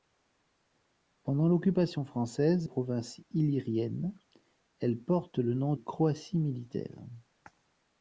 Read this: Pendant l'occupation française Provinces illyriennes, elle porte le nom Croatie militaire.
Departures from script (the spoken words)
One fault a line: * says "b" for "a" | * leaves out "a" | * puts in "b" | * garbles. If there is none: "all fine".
all fine